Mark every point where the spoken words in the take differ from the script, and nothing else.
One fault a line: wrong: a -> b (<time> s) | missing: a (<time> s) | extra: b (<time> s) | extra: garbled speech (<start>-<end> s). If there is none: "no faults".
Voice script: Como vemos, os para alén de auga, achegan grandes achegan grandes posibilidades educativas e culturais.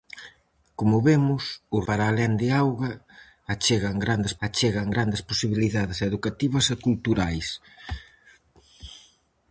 no faults